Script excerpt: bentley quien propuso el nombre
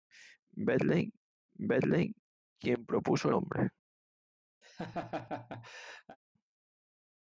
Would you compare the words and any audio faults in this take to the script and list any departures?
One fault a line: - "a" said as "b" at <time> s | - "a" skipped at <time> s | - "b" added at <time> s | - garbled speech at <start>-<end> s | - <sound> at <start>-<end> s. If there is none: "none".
- "bentley" added at 1.6 s
- "el" skipped at 3.3 s
- laugh at 4.6-6.2 s